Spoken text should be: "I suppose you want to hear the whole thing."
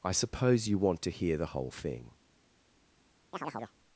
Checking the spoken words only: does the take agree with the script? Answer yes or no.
yes